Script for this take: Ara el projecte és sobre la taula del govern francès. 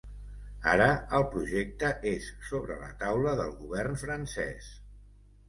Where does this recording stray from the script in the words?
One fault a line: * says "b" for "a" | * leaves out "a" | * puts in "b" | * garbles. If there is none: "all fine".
all fine